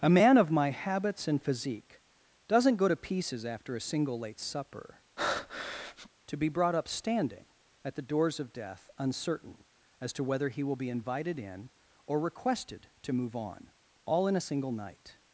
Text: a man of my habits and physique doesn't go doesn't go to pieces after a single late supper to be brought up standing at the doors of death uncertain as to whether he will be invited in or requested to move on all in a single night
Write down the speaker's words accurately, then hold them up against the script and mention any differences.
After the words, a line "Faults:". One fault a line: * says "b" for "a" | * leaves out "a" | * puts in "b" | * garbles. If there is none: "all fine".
a man of my habits and physique doesn't go to pieces after a single late supper to be brought up standing at the doors of death uncertain as to whether he will be invited in or requested to move on all in a single night
Faults:
* leaves out "doesn't go"